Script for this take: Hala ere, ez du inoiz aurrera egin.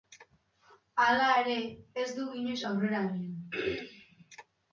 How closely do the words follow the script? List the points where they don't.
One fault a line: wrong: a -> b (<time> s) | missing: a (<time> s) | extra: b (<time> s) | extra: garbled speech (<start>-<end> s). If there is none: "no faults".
no faults